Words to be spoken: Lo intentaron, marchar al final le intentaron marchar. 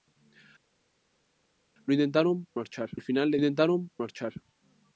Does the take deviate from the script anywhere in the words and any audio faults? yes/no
no